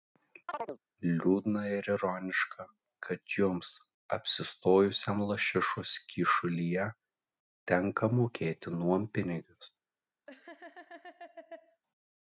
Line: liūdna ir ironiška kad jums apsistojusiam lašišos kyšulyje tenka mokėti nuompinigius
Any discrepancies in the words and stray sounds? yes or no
yes